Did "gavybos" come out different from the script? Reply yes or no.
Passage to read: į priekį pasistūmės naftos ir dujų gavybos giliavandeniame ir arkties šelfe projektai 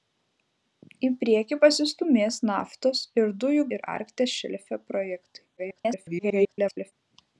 yes